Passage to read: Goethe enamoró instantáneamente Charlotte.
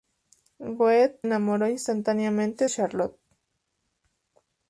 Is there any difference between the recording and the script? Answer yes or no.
no